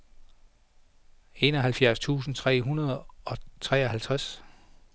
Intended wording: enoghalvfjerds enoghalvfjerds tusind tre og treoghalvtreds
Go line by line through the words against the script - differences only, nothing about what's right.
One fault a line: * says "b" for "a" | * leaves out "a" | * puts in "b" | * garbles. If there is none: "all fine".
* leaves out "enoghalvfjerds"
* puts in "hundrede"